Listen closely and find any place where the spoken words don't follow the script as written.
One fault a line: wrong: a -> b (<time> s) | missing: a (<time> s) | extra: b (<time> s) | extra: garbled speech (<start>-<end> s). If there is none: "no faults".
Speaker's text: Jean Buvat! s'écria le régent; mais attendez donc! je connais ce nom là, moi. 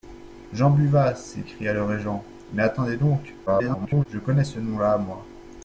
extra: garbled speech (3.5-4.1 s)